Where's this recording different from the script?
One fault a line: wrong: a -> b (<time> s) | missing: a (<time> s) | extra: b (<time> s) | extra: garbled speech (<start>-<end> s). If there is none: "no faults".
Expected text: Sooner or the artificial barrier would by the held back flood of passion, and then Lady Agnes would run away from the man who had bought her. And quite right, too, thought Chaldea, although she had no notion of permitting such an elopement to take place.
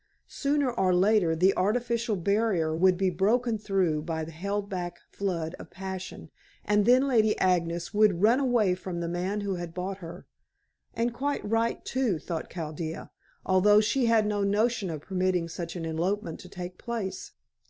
extra: later (0.9 s)
extra: be broken through (3.0 s)